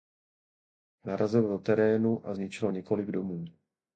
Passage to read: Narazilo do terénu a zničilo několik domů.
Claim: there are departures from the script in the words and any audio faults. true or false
false